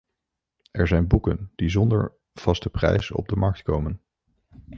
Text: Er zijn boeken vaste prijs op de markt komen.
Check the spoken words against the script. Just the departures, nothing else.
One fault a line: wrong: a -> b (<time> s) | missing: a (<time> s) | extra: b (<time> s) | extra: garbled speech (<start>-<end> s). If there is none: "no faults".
extra: die zonder (1.6 s)